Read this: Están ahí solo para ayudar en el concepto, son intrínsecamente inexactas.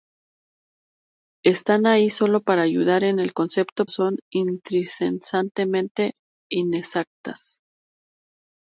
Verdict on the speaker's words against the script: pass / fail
pass